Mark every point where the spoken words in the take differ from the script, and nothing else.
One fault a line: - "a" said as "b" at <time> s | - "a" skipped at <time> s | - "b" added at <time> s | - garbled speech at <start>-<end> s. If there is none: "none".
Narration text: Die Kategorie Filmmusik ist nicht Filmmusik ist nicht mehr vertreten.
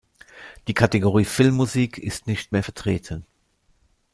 - "Filmmusik ist nicht" skipped at 2.5 s